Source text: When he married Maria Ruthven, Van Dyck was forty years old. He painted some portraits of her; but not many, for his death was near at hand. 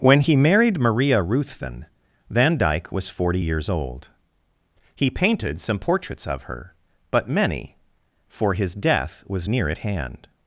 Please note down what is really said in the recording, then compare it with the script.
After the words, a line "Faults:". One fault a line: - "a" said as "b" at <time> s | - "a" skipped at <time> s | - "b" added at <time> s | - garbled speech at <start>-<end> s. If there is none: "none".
When he married Maria Ruthven, Van Dyck was forty years old. He painted some portraits of her; but many, for his death was near at hand.
Faults:
- "not" skipped at 7.3 s